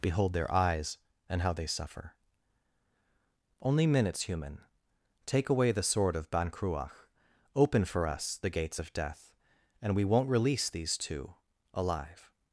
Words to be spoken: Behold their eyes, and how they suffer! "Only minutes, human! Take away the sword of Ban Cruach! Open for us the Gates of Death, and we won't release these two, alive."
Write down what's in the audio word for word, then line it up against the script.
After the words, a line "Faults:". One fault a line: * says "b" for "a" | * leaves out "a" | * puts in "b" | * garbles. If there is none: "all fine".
Behold their eyes, and how they suffer! "Only minutes, human! Take away the sword of Ban Cruach! Open for us the Gates of Death, and we won't release these two, alive."
Faults:
all fine